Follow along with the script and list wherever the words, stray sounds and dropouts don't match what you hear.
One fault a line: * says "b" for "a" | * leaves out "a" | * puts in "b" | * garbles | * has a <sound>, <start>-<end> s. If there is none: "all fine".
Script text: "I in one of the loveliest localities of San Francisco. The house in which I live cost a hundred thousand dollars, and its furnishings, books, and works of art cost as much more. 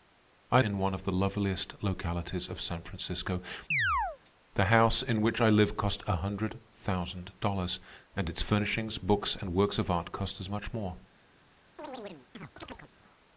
* has a chirp, 3.7-4.2 s
* has a chirp, 11.8-12.9 s